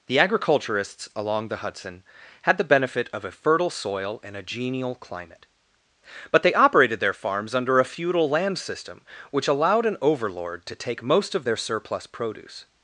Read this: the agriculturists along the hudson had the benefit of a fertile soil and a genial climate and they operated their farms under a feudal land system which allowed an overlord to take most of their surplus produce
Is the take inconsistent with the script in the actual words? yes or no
yes